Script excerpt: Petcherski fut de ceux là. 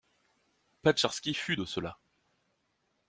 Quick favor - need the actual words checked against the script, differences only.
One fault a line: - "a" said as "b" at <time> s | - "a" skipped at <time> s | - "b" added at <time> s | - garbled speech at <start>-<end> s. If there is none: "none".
none